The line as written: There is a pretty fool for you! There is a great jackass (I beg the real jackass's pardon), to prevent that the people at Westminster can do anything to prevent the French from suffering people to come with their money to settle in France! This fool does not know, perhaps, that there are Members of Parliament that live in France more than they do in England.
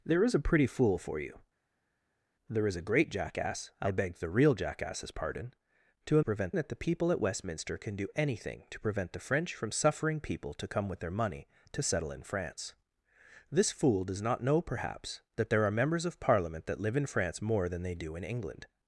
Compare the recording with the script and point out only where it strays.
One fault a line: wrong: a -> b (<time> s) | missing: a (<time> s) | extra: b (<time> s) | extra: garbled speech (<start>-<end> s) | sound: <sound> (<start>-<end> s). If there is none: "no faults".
no faults